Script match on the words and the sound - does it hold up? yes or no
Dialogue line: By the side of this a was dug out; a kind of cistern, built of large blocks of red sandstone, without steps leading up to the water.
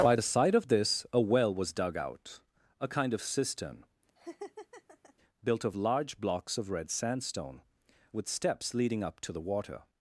no